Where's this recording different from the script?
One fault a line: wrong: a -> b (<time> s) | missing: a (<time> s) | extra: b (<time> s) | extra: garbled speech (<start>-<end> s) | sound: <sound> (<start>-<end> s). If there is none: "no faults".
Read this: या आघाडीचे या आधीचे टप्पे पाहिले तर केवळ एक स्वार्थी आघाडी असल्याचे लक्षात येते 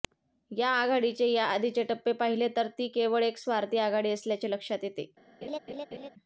extra: ती (2.8 s)
sound: laugh (5.4-6.1 s)